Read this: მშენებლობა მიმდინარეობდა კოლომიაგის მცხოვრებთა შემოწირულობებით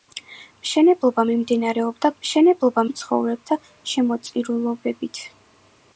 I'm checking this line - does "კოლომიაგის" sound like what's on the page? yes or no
no